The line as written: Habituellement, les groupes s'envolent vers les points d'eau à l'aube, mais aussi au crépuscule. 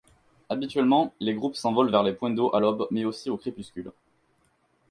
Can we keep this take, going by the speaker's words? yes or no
yes